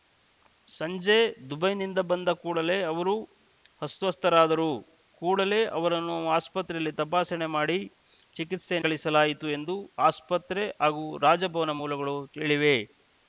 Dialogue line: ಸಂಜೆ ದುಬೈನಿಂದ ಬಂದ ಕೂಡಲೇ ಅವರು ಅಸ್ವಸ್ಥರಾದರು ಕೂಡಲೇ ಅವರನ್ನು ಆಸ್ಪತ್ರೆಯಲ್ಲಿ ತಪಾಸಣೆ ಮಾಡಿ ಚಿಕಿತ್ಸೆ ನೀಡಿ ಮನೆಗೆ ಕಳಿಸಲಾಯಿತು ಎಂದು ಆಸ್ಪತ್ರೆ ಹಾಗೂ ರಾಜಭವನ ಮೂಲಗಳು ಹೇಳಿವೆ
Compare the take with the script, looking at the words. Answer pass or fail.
fail